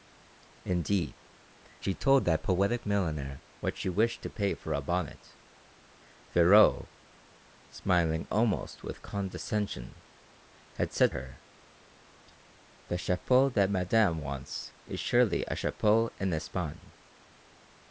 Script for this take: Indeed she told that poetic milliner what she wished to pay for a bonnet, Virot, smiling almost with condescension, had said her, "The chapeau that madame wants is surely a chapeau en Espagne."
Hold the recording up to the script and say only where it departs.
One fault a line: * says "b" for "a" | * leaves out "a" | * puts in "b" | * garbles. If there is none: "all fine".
all fine